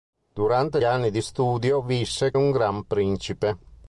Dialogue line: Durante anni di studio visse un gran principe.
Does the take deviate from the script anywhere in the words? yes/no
no